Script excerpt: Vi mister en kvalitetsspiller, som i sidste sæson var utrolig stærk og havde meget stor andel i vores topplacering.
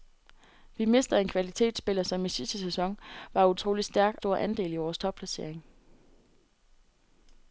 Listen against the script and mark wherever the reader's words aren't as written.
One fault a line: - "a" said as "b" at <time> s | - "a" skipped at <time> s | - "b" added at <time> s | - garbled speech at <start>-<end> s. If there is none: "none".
- "og havde meget" skipped at 4.2 s